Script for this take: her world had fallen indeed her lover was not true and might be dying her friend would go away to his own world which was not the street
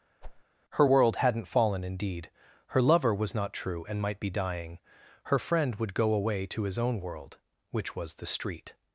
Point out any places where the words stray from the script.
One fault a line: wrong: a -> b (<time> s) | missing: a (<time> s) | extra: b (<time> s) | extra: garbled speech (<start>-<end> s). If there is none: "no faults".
wrong: had -> hadn't (1.2 s)
missing: not (8.2 s)